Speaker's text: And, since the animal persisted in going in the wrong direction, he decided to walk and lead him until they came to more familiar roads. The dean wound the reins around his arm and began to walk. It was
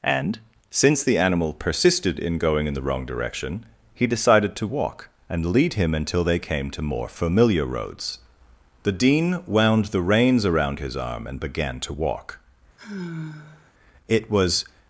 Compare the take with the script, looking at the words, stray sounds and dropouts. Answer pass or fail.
fail